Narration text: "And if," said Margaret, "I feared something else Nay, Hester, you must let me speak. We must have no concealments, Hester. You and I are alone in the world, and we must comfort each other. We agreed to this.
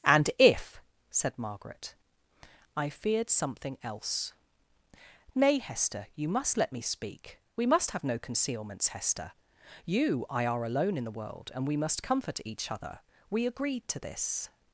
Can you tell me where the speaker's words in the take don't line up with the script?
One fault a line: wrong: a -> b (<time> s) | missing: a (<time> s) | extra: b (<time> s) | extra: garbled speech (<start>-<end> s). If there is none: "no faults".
missing: and (10.3 s)